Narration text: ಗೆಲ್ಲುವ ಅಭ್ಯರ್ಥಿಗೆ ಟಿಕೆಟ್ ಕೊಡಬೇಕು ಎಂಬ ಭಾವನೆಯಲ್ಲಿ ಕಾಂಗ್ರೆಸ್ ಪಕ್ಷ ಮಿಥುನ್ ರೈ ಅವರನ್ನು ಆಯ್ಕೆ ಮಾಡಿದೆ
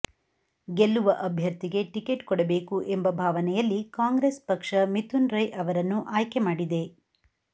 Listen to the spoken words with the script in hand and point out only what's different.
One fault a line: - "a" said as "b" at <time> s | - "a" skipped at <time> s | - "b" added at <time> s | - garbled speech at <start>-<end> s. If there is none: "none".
none